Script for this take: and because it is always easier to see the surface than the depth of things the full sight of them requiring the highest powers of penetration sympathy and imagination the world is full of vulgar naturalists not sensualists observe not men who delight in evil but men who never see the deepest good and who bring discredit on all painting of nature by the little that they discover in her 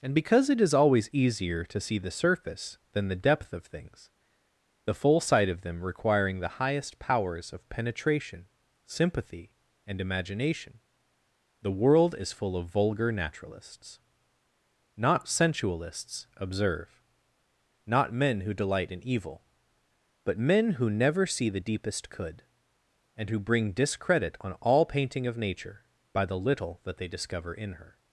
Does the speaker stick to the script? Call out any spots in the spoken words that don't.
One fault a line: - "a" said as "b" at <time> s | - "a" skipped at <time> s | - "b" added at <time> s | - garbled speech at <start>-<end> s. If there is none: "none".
- "good" said as "could" at 22.1 s